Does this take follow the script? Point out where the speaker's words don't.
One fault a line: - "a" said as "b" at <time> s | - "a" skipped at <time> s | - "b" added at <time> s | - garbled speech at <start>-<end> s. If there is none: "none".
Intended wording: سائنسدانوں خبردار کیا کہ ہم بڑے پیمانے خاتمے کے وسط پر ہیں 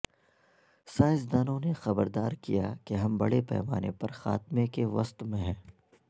- "نے" added at 1.6 s
- "پر" added at 3.9 s
- "پر" said as "میں" at 5.2 s